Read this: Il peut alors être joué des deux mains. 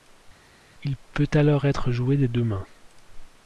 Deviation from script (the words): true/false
false